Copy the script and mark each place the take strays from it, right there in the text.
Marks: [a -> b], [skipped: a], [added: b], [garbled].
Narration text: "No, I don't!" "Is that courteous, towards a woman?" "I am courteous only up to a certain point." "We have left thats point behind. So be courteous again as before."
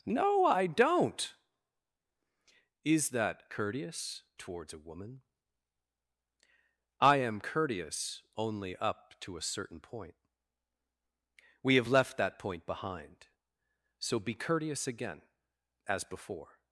"No, I don't!" "Is that courteous, towards a woman?" "I am courteous only up to a certain point." "We have left [thats -> that] point behind. So be courteous again as before."